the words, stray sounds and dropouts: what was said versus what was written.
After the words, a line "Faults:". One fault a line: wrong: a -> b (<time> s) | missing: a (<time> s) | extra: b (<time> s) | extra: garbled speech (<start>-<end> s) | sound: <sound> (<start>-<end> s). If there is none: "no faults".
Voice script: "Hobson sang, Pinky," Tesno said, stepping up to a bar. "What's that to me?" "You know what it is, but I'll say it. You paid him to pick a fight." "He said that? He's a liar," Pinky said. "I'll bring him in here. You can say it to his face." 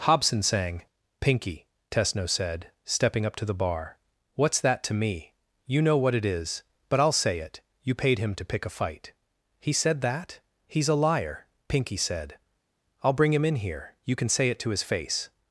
"Hobson sang, Pinky," Tesno said, stepping up to the bar. "What's that to me?" "You know what it is, but I'll say it. You paid him to pick a fight." "He said that? He's a liar," Pinky said. "I'll bring him in here. You can say it to his face."
Faults:
wrong: a -> the (3.5 s)